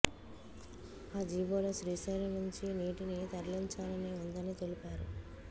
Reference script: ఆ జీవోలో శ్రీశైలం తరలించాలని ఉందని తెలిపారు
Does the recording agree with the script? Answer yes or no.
no